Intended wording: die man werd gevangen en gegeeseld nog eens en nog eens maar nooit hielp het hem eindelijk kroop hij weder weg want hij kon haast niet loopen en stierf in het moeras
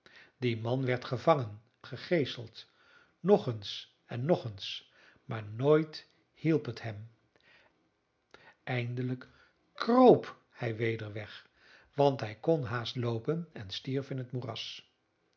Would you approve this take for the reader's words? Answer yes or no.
no